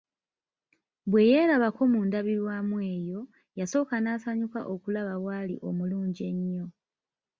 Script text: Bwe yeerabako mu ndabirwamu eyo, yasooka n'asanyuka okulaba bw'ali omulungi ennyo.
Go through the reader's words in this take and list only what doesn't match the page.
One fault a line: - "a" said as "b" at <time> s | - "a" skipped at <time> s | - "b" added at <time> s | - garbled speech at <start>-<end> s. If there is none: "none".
none